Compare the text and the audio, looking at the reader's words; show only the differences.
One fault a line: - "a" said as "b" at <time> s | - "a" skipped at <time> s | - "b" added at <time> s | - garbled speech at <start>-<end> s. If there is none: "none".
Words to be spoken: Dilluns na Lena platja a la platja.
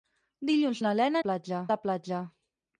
none